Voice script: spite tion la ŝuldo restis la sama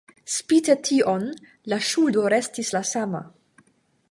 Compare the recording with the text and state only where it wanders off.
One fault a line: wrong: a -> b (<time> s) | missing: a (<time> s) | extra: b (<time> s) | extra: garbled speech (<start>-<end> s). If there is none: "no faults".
no faults